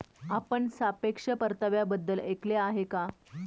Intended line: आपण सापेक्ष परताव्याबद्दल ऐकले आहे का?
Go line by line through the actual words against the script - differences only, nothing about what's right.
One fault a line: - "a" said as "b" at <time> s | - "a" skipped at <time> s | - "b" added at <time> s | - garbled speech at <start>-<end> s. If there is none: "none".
none